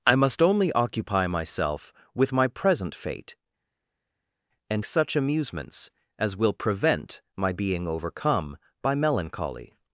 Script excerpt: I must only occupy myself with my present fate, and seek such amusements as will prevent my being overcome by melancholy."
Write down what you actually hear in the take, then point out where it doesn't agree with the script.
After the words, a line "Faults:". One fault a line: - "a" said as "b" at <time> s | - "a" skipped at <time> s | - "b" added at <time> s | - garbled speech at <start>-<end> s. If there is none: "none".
I must only occupy myself with my present fate, and such amusements as will prevent my being overcome by melancholy."
Faults:
- "seek" skipped at 4.8 s